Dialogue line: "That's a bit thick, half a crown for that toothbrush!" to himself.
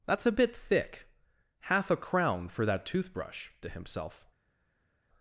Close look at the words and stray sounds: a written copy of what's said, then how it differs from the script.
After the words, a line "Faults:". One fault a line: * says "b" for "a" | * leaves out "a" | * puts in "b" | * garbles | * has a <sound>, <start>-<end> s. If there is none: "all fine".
"That's a bit thick, half a crown for that toothbrush!" to himself.
Faults:
all fine